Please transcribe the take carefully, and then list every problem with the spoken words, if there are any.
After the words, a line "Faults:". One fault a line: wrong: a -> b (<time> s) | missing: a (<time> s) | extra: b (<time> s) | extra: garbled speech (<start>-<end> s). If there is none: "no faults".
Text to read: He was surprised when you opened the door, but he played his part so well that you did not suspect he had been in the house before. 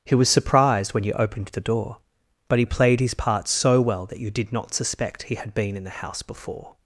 He was surprised when you opened the door, but he played his part so well that you did not suspect he had been in the house before.
Faults:
no faults